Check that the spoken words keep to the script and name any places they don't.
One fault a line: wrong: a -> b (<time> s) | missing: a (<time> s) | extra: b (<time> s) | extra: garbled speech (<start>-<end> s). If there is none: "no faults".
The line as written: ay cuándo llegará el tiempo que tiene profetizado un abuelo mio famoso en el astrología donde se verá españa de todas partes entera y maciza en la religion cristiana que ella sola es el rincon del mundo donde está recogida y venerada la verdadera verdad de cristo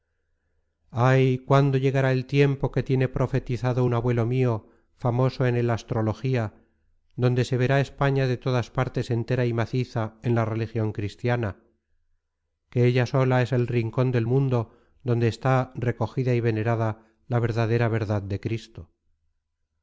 no faults